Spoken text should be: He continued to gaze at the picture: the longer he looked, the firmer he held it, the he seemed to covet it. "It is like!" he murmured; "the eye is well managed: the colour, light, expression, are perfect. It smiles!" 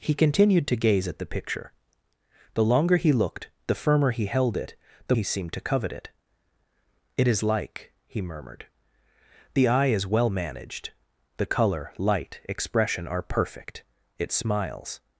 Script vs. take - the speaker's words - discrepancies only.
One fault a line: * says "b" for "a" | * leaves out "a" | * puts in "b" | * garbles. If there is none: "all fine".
all fine